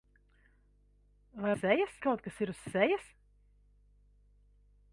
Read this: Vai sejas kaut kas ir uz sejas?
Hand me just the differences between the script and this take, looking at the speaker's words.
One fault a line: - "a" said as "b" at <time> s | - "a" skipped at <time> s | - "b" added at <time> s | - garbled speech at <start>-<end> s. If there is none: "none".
none